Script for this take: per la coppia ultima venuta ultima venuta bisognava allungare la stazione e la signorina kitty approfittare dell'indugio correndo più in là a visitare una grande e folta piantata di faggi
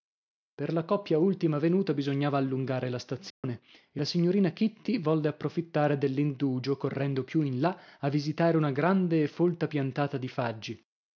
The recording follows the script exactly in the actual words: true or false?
false